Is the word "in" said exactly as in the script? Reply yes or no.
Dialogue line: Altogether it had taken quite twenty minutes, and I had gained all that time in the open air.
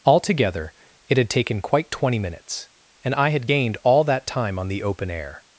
no